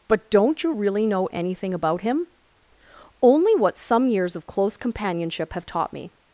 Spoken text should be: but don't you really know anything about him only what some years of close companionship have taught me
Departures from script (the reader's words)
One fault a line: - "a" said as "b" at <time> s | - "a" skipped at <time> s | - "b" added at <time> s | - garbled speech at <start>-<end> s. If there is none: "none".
none